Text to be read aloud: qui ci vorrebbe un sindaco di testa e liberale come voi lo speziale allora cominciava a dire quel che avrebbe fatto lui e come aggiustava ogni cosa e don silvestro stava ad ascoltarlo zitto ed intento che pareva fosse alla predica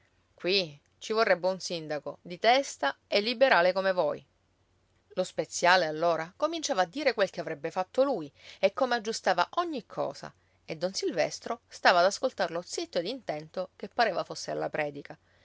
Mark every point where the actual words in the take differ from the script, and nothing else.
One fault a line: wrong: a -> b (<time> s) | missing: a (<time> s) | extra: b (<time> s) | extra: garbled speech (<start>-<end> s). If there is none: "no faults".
no faults